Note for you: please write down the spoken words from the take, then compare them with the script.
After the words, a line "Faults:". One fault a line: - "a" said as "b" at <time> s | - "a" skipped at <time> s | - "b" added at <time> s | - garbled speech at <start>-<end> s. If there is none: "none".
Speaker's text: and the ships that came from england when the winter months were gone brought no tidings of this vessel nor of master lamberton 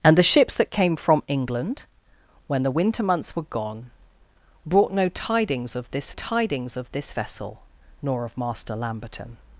and the ships that came from england when the winter months were gone brought no tidings of this tidings of this vessel nor of master lamberton
Faults:
- "tidings of this" added at 6.1 s